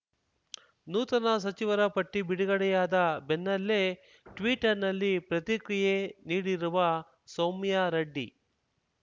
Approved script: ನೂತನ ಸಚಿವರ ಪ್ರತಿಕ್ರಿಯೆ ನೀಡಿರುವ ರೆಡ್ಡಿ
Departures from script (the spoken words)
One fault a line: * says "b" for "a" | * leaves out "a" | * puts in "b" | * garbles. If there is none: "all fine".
* puts in "ಪಟ್ಟಿಬಿಡುಗಡೆಯಾದ ಬೆನ್ನಲ್ಲೇ ಟ್ವೀಟರ್‌ನಲ್ಲಿ"
* puts in "ಸೌಮ್ಯಾ"